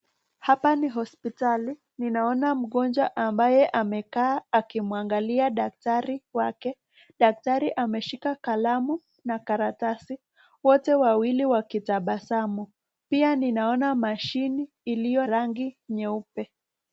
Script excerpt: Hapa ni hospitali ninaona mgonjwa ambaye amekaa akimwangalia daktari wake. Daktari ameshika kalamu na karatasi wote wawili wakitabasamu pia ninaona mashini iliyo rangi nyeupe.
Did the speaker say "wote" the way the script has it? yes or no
yes